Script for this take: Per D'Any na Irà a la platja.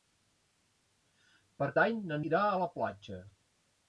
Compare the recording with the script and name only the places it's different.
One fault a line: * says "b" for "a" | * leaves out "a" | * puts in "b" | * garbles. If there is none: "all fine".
all fine